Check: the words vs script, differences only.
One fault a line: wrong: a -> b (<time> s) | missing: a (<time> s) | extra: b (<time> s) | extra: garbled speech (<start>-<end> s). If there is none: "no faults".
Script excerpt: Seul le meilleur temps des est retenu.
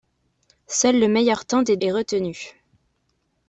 no faults